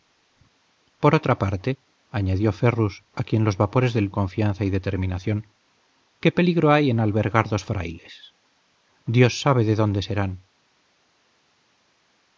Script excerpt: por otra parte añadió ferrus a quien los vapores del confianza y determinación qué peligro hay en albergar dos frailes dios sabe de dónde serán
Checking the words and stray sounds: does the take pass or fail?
pass